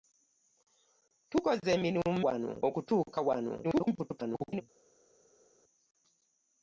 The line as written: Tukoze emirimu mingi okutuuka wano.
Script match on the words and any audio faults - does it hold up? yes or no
no